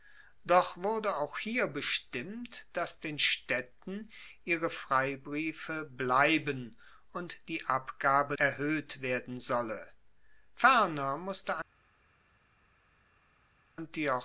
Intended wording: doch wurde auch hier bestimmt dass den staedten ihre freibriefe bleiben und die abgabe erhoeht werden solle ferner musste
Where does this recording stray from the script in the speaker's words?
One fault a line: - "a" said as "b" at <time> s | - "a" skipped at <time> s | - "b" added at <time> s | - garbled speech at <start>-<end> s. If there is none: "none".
none